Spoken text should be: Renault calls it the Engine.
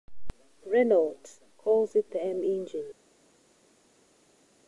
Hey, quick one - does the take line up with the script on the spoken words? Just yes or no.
no